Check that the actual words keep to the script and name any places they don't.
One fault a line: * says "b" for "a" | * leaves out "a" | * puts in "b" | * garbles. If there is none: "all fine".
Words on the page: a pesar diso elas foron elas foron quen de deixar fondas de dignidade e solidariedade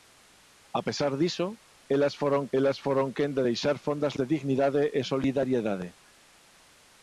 all fine